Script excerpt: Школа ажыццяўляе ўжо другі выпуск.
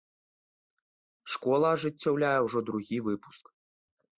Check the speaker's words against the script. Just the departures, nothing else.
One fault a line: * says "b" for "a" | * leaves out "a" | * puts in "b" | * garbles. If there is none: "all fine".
all fine